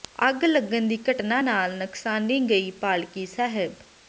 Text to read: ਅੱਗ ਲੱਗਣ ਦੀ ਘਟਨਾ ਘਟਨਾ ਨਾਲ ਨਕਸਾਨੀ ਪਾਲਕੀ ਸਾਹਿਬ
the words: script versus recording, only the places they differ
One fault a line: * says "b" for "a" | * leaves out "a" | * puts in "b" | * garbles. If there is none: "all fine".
* leaves out "ਘਟਨਾ"
* puts in "ਗਈ"